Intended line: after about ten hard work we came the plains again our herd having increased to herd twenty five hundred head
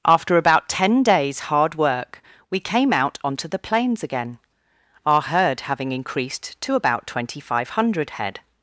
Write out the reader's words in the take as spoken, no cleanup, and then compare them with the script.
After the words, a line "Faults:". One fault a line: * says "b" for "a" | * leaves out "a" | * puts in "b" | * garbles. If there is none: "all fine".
after about ten days hard work we came out onto the plains again our herd having increased to about twenty five hundred head
Faults:
* puts in "days"
* puts in "out onto"
* says "about" for "herd"